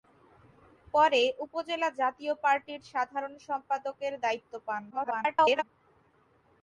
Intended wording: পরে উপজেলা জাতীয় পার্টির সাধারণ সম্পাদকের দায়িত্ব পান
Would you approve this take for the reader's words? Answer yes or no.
no